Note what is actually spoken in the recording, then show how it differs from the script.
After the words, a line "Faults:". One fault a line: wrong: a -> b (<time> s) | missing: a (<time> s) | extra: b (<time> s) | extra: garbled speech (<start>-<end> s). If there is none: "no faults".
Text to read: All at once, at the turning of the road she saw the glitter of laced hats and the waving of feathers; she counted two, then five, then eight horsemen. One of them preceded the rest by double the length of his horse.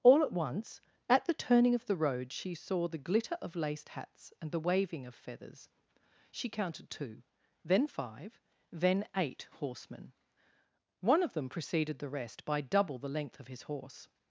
All at once, at the turning of the road she saw the glitter of laced hats and the waving of feathers; she counted two, then five, then eight horsemen. One of them preceded the rest by double the length of his horse.
Faults:
no faults